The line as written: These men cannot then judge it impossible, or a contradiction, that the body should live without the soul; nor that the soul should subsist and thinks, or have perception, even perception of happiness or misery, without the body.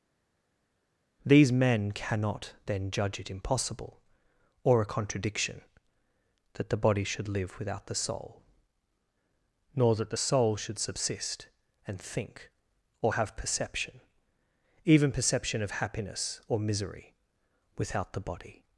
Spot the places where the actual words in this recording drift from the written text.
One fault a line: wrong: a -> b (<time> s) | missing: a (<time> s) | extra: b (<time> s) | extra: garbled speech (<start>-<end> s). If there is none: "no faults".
wrong: thinks -> think (12.0 s)